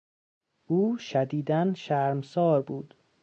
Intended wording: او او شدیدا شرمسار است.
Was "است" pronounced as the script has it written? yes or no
no